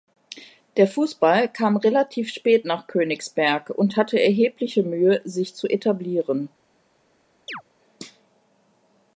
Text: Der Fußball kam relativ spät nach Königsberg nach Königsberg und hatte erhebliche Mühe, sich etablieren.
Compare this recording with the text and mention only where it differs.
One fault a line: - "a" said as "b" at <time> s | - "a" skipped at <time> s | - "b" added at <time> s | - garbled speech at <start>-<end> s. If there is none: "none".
- "nach Königsberg" skipped at 3.7 s
- "zu" added at 5.6 s